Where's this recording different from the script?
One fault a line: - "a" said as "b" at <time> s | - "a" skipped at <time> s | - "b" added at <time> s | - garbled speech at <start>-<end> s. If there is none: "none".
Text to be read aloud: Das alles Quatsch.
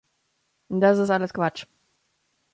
- "ist" added at 1.0 s